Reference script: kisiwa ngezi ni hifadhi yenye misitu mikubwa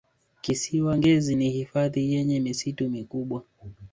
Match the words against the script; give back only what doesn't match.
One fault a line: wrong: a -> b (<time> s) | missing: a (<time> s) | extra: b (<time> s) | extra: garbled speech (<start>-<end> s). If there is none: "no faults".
no faults